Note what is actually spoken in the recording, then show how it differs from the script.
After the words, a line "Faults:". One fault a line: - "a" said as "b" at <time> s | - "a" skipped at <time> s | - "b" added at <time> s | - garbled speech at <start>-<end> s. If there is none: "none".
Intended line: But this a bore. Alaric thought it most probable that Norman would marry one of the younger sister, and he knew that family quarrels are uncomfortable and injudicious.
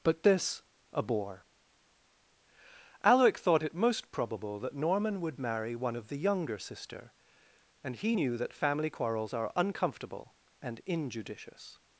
But this a bore. Alaric thought it most probable that Norman would marry one of the younger sister, and he knew that family quarrels are uncomfortable and injudicious.
Faults:
none